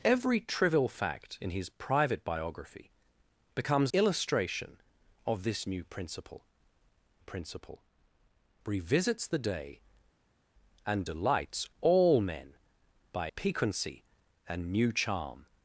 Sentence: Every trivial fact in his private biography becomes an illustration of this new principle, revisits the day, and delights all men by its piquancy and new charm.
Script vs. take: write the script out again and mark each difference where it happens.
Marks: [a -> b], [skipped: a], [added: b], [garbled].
Every trivial fact in his private biography becomes [skipped: an] illustration of this new principle, [added: principle] revisits the day, and delights all men by [skipped: its] piquancy and new charm.